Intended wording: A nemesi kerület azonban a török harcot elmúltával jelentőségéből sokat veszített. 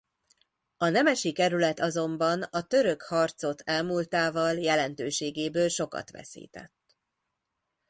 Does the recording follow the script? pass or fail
pass